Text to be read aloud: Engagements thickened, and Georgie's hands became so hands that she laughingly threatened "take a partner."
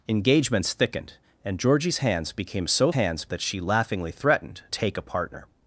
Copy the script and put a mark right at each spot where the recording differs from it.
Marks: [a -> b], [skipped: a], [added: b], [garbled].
Engagements thickened, and Georgie's hands became so hands that she laughingly threatened "take a partner."